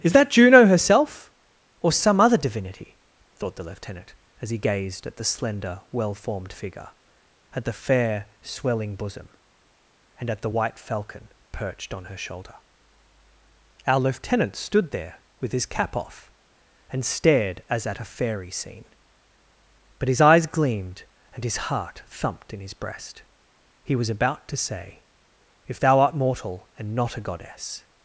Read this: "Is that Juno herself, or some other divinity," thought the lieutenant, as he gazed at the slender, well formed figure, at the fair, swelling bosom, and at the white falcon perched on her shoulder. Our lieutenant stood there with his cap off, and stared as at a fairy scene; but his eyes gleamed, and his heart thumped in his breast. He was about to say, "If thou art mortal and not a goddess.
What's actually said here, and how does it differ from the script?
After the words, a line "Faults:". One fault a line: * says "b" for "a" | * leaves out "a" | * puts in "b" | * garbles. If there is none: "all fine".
"Is that Juno herself, or some other divinity," thought the lieutenant, as he gazed at the slender, well formed figure, at the fair, swelling bosom, and at the white falcon perched on her shoulder. Our lieutenant stood there with his cap off, and stared as at a fairy scene; but his eyes gleamed, and his heart thumped in his breast. He was about to say, "If thou art mortal and not a goddess.
Faults:
all fine